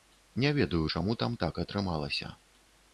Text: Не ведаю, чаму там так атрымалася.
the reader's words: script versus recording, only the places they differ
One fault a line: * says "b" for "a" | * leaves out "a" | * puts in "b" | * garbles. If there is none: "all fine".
all fine